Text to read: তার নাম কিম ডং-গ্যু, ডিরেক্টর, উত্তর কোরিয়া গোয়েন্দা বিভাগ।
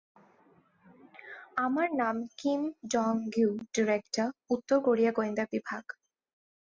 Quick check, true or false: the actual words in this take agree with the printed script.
false